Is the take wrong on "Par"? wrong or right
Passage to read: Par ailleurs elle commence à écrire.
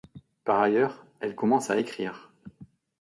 right